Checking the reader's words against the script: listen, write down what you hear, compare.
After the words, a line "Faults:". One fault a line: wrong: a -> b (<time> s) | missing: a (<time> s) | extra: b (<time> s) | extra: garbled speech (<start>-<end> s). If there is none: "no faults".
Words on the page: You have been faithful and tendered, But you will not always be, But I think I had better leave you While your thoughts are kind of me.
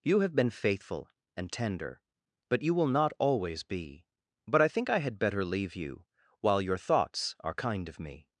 You have been faithful and tender, But you will not always be, But I think I had better leave you While your thoughts are kind of me.
Faults:
wrong: tendered -> tender (1.5 s)